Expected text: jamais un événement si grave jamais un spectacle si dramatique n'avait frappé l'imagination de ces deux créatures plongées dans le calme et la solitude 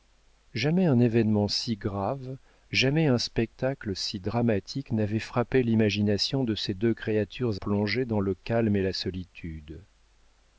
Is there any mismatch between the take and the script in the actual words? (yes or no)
no